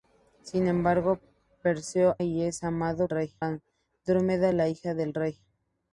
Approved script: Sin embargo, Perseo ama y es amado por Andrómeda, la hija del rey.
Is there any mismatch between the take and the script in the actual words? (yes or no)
yes